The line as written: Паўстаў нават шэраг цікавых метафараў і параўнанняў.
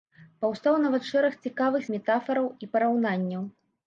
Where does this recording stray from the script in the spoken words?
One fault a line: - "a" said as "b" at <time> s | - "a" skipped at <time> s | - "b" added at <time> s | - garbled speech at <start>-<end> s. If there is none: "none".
none